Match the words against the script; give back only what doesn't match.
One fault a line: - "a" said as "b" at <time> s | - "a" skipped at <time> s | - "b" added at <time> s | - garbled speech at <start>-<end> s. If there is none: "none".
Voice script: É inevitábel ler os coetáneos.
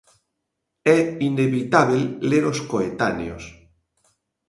none